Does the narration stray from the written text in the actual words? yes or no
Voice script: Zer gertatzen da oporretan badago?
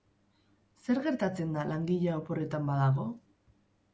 yes